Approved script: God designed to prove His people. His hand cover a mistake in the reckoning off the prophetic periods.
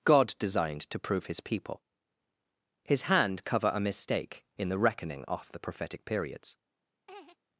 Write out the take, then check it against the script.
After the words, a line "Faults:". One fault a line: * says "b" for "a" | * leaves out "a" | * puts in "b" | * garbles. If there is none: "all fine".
God designed to prove His people. His hand cover a mistake in the reckoning off the prophetic periods.
Faults:
all fine